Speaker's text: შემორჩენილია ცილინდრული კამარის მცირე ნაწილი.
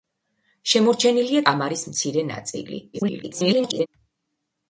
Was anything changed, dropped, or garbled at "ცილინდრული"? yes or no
yes